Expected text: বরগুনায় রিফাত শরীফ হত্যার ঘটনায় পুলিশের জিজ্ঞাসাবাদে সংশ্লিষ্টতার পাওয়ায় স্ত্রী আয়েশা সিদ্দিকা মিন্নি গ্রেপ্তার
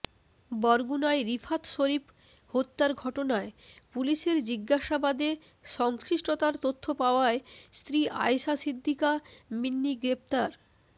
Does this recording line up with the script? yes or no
no